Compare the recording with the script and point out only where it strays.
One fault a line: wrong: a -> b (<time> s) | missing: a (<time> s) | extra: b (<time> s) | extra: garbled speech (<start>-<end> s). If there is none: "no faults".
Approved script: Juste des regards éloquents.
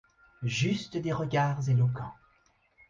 no faults